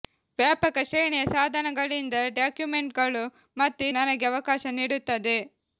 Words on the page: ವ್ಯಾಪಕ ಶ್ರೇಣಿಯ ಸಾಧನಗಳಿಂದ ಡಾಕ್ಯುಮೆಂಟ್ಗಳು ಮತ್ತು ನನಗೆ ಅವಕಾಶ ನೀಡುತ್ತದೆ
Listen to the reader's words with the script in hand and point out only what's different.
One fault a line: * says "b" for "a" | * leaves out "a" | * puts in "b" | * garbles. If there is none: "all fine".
all fine